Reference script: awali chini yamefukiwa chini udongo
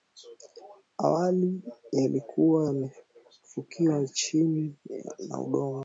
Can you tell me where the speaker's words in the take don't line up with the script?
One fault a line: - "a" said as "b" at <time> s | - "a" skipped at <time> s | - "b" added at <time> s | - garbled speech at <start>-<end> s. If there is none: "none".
- "chini" said as "yalikuwa" at 1.9 s
- "na" added at 5.3 s